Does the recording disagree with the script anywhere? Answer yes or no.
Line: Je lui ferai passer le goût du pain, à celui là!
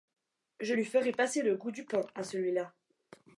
no